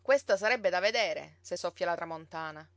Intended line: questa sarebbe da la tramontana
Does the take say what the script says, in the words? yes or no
no